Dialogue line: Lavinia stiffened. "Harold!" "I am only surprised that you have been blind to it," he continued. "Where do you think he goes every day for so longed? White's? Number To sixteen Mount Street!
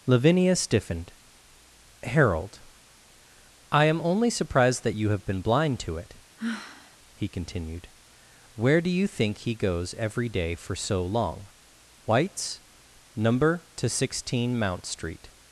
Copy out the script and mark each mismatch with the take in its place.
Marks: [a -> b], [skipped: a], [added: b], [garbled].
Lavinia stiffened. "Harold!" "I am only surprised that you have been blind to it," he continued. "Where do you think he goes every day for so [longed? -> long] White's? Number To sixteen Mount Street!